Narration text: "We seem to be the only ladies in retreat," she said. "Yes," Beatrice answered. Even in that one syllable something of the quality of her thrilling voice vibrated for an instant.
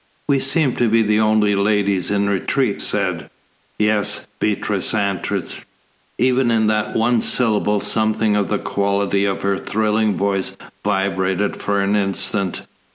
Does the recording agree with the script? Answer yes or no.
no